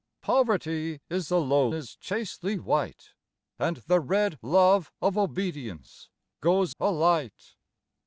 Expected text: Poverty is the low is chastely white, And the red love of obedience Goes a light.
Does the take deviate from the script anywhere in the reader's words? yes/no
no